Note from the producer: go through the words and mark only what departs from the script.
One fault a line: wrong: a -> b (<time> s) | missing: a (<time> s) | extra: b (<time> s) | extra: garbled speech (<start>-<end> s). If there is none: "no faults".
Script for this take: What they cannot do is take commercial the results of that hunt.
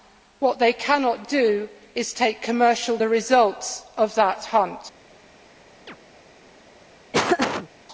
no faults